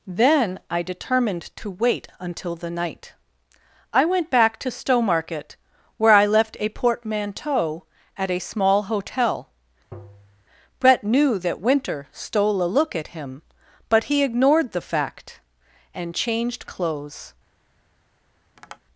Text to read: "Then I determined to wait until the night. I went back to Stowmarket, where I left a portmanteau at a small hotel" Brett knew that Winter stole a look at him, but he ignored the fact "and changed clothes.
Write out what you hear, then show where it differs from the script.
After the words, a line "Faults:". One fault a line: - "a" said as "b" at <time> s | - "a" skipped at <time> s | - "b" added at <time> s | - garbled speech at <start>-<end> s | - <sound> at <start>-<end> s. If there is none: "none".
"Then I determined to wait until the night. I went back to Stowmarket, where I left a portmanteau at a small hotel" Brett knew that Winter stole a look at him, but he ignored the fact "and changed clothes.
Faults:
- tap at 9.9-10.5 s
- tap at 18.6-18.8 s